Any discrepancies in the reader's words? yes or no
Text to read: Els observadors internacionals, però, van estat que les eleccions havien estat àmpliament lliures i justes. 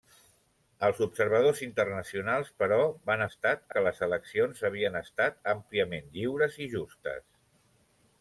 no